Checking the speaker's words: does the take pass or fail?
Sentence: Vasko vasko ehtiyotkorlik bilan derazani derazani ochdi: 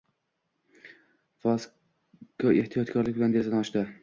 fail